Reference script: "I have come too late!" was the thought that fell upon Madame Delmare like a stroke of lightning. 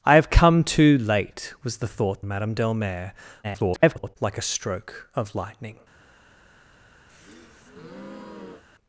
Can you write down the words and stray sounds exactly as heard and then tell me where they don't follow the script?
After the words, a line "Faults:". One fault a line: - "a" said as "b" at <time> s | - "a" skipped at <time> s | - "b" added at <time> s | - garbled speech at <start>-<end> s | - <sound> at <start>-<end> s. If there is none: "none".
"I have come too late!" was the thought Madame Delmare [garbled] like a stroke of lightning.
Faults:
- "that fell upon" skipped at 2.2 s
- garbled speech at 3.4-4.2 s
- breath at 7.1-8.6 s